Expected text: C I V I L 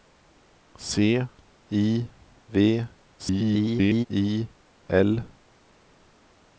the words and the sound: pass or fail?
fail